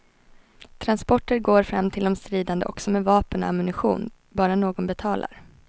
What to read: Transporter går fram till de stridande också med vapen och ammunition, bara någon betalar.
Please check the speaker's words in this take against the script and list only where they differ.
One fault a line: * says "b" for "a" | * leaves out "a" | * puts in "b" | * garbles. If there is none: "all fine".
all fine